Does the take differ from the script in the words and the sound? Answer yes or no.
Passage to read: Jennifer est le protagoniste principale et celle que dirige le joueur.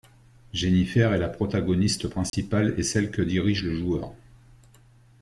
yes